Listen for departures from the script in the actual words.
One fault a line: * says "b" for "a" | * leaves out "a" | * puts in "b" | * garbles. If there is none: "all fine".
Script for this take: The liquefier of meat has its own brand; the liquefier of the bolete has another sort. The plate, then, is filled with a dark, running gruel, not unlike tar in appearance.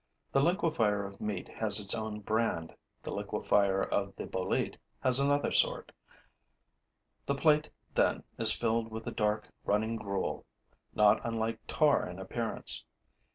all fine